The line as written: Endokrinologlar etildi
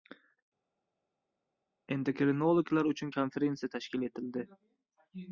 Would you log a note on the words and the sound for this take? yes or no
yes